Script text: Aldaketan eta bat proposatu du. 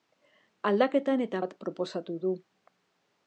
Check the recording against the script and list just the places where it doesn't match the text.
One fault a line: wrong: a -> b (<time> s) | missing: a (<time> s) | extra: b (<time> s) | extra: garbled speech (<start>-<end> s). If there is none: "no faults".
no faults